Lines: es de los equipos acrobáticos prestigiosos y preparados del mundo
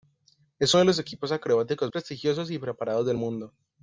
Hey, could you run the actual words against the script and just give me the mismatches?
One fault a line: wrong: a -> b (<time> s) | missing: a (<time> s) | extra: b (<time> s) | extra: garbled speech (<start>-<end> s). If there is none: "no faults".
no faults